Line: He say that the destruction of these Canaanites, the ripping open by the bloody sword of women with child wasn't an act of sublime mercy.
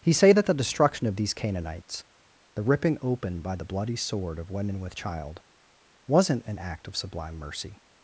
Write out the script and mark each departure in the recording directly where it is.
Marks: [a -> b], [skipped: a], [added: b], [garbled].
He say that the destruction of these Canaanites, the ripping open by the bloody sword of women with child wasn't an act of sublime mercy.